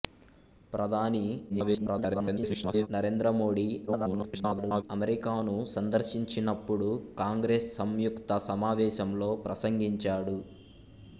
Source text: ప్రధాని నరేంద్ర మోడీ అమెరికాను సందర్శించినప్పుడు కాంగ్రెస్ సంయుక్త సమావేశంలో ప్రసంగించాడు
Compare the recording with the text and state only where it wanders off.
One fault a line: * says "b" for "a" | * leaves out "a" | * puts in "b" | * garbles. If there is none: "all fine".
* garbles
* garbles